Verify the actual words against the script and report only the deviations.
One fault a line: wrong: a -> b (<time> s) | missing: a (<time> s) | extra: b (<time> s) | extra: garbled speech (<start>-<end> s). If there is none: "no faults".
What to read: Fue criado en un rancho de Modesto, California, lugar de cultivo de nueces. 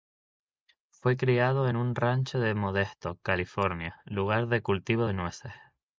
no faults